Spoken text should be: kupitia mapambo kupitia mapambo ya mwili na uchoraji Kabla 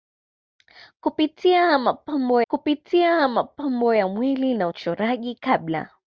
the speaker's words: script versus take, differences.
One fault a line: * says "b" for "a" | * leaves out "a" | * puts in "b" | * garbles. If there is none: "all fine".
all fine